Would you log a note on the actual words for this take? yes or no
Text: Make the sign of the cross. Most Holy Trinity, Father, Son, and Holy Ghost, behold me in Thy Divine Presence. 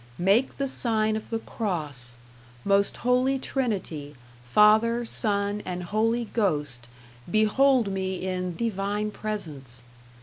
yes